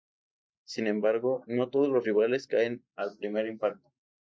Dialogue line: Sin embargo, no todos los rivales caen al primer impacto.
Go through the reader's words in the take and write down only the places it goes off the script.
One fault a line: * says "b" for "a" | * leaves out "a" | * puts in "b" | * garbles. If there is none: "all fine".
all fine